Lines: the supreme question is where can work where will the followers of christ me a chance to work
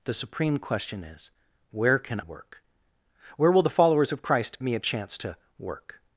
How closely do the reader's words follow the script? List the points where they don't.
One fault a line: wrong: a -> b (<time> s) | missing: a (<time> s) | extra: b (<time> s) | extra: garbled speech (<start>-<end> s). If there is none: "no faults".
no faults